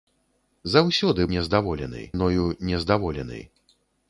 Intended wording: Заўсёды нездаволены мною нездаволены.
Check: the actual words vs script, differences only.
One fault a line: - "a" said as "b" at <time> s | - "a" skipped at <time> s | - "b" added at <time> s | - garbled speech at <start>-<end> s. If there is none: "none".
none